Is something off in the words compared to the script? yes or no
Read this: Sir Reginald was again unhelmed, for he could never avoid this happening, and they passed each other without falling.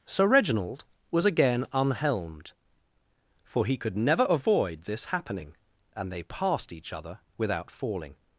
no